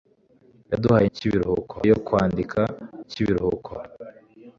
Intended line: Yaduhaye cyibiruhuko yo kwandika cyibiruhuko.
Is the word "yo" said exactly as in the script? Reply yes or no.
yes